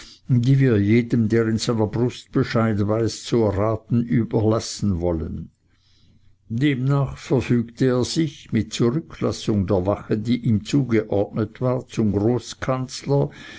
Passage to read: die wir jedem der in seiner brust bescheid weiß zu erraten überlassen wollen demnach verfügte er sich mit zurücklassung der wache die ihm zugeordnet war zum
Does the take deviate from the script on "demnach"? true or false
false